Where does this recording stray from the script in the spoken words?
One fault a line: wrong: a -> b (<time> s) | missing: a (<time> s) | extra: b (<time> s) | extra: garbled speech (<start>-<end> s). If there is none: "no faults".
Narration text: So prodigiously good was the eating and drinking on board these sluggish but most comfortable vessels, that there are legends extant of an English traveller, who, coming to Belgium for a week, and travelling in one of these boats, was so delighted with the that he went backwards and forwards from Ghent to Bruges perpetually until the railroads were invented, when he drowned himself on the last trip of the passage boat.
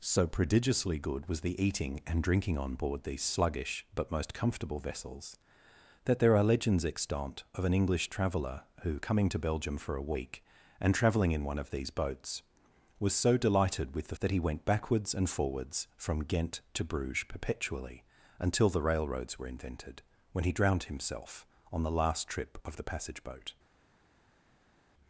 no faults